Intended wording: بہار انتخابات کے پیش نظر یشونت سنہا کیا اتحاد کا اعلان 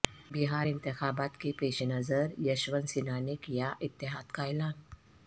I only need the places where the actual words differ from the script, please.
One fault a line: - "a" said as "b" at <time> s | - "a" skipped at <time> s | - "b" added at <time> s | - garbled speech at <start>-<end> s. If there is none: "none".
- "نے" added at 3.2 s